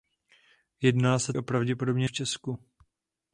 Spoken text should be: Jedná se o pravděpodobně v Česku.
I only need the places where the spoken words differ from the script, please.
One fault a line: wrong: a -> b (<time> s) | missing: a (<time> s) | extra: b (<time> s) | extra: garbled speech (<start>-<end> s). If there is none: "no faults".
no faults